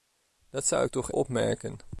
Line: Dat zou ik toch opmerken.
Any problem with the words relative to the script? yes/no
no